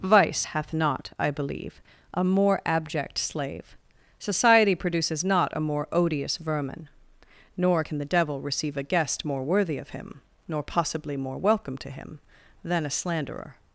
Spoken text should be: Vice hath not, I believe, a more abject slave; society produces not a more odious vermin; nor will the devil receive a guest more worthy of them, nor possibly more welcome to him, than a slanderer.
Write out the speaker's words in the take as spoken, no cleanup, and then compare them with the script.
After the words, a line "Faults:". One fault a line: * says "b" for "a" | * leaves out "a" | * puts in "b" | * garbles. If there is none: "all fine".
Vice hath not, I believe, a more abject slave; society produces not a more odious vermin; nor can the devil receive a guest more worthy of him, nor possibly more welcome to him, than a slanderer.
Faults:
* says "can" for "will"
* says "him" for "them"